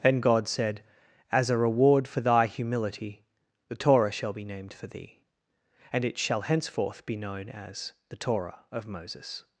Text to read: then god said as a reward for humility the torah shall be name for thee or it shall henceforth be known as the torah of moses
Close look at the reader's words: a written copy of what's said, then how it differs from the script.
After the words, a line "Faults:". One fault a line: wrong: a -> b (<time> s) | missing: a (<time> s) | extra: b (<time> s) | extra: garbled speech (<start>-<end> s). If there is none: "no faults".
then god said as a reward for thy humility the torah shall be named for thee and it shall henceforth be known as the torah of moses
Faults:
extra: thy (2.2 s)
wrong: name -> named (4.4 s)
wrong: or -> and (5.9 s)